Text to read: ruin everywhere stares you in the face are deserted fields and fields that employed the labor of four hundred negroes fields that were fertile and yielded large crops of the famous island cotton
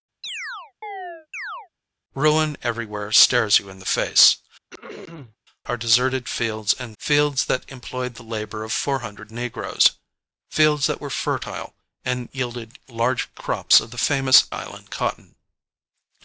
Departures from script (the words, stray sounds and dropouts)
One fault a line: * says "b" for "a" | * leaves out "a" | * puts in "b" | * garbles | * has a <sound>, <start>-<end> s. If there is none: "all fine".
* has a chirp, 0.2-1.7 s
* has a throat clearing, 4.7-5.4 s